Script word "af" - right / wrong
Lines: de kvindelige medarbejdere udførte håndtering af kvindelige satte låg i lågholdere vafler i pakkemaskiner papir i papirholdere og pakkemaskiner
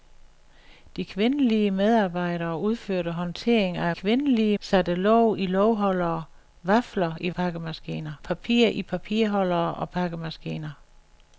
right